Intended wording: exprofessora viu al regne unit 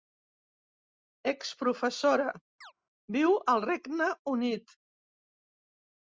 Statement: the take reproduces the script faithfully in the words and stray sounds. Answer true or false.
false